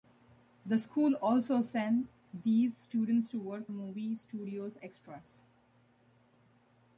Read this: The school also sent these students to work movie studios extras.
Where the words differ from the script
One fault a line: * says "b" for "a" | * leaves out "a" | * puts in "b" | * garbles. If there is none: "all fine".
all fine